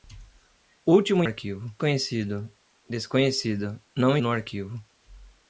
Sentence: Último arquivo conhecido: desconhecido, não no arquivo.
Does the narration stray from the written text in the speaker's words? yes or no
no